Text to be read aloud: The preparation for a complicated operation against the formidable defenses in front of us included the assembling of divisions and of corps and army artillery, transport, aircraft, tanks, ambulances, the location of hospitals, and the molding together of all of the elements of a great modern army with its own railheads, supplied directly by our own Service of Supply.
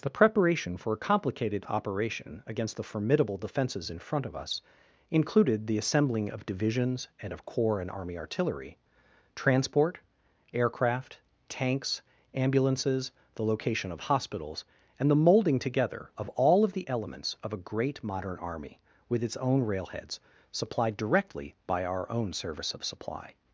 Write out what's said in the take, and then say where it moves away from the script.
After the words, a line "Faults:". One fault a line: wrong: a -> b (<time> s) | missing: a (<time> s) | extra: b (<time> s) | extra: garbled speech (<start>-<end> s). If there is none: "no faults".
The preparation for a complicated operation against the formidable defenses in front of us included the assembling of divisions and of corps and army artillery, transport, aircraft, tanks, ambulances, the location of hospitals, and the molding together of all of the elements of a great modern army with its own railheads, supplied directly by our own Service of Supply.
Faults:
no faults